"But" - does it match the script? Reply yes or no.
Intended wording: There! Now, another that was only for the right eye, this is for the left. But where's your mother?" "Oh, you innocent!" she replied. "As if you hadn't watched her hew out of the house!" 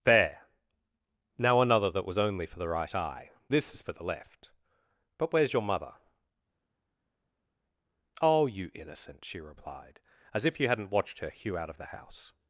yes